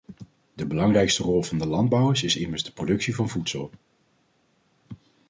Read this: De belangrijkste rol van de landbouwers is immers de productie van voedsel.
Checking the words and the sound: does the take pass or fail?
pass